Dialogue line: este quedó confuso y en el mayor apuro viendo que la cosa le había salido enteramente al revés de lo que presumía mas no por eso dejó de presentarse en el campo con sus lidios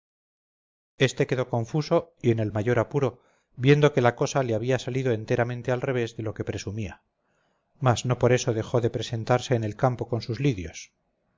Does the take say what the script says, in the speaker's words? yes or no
yes